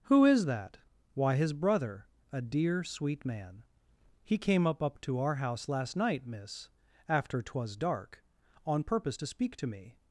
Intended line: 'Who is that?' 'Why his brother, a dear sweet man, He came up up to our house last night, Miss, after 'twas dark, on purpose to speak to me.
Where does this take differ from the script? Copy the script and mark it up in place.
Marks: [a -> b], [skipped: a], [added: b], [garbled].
'Who is that?' 'Why his brother, a dear sweet man, He came up up to our house last night, Miss, after 'twas dark, on purpose to speak to me.